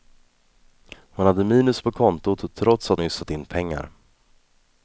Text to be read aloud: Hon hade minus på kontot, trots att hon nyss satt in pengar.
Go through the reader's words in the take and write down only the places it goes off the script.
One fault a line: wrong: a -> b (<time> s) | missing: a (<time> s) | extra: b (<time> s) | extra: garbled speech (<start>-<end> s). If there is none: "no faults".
missing: hon (3.0 s)